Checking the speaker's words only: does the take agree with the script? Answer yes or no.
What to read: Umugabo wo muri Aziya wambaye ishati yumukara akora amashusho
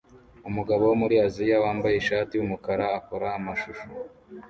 yes